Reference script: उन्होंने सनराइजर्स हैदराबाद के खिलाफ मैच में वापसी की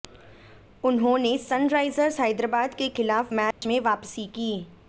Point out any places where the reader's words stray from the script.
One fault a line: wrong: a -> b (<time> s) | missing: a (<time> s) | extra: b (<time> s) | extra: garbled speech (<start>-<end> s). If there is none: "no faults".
no faults